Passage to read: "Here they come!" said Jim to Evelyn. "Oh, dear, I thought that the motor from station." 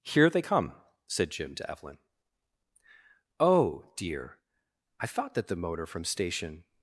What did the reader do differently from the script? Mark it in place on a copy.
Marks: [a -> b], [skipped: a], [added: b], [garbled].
"Here they come!" said Jim to Evelyn. "Oh, dear, I thought that the motor from station."